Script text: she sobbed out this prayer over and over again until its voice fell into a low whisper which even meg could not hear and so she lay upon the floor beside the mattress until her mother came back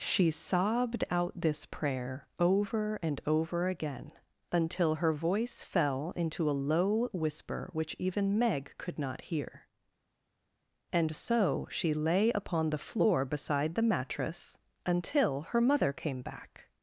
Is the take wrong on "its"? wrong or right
wrong